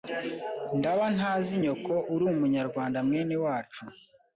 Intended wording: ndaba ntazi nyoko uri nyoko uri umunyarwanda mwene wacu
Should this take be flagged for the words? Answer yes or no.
yes